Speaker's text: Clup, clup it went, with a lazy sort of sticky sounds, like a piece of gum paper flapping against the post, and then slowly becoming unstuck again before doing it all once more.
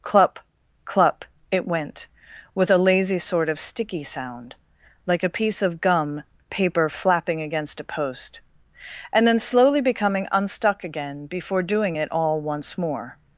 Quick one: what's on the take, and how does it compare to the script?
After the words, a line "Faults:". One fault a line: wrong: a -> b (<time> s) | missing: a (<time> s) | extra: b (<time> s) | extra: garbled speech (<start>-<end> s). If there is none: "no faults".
Clup, clup it went, with a lazy sort of sticky sound, like a piece of gum paper flapping against a post, and then slowly becoming unstuck again before doing it all once more.
Faults:
wrong: sounds -> sound (4.0 s)
wrong: the -> a (7.8 s)